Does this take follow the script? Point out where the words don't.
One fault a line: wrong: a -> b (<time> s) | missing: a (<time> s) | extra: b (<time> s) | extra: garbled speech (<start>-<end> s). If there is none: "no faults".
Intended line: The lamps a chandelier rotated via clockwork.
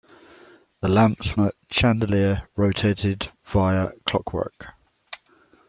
no faults